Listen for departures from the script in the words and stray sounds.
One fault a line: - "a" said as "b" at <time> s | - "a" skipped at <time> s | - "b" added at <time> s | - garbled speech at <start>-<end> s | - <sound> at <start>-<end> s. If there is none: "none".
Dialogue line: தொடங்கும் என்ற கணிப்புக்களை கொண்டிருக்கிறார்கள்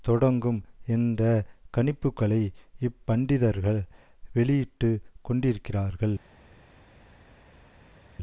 - "இப்பண்டிதர்கள் வெளியிட்டு" added at 2.8 s